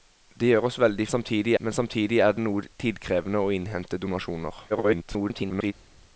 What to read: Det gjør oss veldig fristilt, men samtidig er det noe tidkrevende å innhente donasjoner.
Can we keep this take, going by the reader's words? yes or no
no